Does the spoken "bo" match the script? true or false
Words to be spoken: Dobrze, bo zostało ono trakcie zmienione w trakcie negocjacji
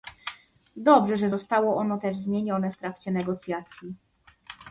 false